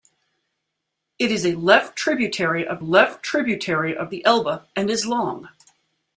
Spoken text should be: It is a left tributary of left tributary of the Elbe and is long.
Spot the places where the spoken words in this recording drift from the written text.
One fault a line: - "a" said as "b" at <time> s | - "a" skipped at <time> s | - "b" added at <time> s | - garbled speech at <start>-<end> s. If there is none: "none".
none